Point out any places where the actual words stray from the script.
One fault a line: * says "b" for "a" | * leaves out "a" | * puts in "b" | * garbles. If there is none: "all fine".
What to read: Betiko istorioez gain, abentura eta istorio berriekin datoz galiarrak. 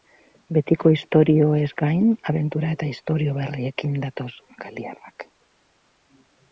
all fine